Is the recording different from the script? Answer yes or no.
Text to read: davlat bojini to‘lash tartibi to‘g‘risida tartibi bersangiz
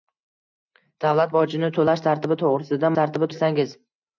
no